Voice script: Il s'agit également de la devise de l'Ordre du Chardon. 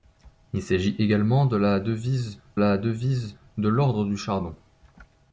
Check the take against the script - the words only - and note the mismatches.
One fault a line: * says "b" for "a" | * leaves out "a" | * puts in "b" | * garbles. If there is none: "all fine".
* puts in "la devise"